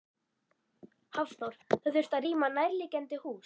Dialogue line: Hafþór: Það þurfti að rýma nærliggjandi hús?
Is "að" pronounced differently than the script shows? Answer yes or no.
no